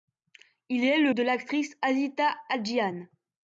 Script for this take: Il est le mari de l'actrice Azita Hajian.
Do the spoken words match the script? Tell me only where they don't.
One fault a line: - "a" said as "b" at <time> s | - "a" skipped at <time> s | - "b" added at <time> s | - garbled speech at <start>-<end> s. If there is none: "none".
- "mari" skipped at 1.1 s